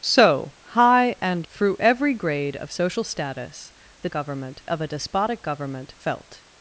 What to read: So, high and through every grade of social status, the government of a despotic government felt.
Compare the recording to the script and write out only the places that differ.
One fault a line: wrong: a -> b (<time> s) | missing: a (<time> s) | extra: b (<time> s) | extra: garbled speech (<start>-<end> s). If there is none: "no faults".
no faults